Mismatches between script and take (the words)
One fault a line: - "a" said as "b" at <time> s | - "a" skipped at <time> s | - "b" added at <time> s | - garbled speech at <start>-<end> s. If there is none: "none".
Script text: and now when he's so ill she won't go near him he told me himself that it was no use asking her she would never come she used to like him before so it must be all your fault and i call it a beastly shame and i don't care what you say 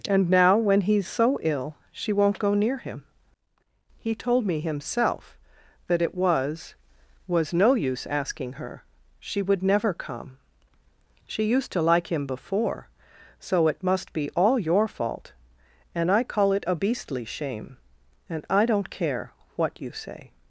- "was" added at 7.3 s